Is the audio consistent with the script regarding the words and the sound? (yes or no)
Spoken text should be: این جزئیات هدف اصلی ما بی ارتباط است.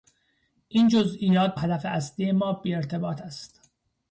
yes